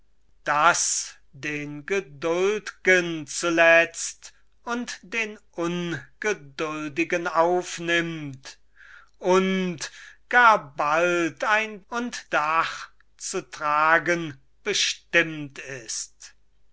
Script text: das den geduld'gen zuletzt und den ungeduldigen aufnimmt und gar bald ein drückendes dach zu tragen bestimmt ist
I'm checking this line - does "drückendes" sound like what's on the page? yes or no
no